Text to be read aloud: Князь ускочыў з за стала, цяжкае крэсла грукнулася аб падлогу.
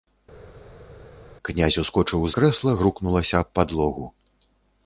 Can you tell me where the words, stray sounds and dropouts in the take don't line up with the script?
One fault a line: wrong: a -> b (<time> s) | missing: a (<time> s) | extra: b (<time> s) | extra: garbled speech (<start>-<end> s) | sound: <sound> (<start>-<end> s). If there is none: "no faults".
missing: за стала цяжкае (2.3 s)